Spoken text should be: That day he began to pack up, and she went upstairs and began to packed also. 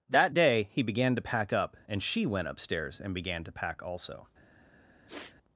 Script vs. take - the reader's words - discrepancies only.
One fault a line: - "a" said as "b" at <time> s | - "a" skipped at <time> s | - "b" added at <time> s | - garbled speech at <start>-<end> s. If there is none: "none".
- "packed" said as "pack" at 3.5 s